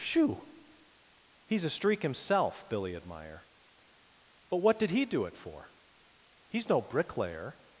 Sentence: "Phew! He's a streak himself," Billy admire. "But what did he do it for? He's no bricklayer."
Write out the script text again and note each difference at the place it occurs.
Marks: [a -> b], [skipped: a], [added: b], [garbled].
"Phew! He's a streak himself," Billy admire. "But what did he do it for? He's no bricklayer."